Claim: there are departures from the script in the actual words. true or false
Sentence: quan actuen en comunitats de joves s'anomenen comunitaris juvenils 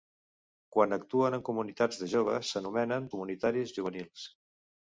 false